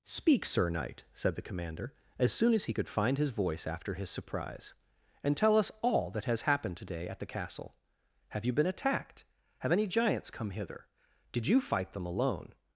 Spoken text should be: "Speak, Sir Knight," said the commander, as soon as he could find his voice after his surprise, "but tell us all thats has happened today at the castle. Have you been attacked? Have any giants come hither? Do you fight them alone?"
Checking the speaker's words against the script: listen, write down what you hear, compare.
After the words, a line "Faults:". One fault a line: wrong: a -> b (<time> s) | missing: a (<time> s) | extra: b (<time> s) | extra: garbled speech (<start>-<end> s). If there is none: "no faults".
"Speak, Sir Knight," said the commander, as soon as he could find his voice after his surprise, "and tell us all that has happened today at the castle. Have you been attacked? Have any giants come hither? Did you fight them alone?"
Faults:
wrong: but -> and (5.2 s)
wrong: thats -> that (6.1 s)
wrong: Do -> Did (11.3 s)